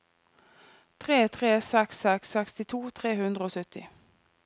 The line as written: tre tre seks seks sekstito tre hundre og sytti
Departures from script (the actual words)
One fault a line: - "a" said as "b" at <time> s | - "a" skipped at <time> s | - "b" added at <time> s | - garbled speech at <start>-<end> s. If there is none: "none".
none